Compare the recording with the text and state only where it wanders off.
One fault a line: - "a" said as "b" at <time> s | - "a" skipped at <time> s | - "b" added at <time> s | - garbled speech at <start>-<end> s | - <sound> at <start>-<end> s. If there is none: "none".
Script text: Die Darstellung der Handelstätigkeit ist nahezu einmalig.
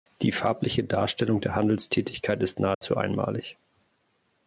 - "farbliche" added at 0.3 s
- dropout at 2.7-2.8 s